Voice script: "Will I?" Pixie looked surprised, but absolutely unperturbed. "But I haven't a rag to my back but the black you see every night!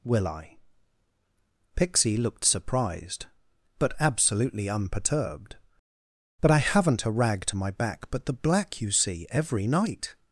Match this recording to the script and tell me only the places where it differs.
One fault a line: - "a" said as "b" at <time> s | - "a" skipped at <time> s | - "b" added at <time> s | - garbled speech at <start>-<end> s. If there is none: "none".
none